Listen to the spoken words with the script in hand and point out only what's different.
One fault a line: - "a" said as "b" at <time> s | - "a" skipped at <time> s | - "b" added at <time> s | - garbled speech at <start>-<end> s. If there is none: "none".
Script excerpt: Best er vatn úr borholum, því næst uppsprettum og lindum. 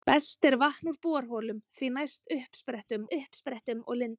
- "uppsprettum" added at 3.1 s